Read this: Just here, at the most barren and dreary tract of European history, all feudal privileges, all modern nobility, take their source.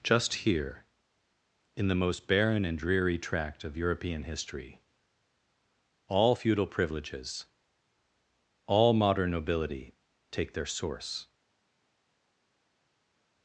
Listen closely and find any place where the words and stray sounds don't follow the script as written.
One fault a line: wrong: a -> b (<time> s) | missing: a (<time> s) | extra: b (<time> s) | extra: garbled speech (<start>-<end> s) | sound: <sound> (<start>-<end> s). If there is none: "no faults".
wrong: at -> in (1.8 s)